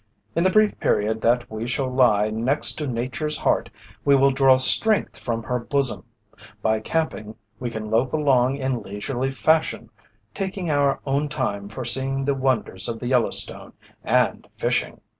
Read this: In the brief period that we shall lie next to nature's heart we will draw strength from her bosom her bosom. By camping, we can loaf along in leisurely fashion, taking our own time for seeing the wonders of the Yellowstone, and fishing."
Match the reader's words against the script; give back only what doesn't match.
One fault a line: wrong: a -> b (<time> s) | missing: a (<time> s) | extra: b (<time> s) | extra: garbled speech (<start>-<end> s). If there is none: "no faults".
missing: her bosom (6.0 s)